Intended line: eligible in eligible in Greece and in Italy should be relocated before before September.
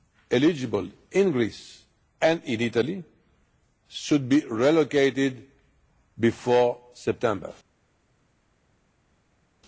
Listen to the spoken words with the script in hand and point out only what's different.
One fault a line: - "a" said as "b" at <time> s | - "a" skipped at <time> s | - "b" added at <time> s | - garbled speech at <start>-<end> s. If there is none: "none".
- "eligible in" skipped at 1.3 s
- "before" skipped at 6.8 s